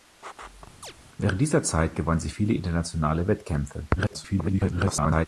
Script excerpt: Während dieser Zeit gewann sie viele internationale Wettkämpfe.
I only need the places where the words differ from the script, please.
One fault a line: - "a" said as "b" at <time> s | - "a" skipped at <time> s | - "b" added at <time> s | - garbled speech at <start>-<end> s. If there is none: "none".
- garbled speech at 4.0-5.3 s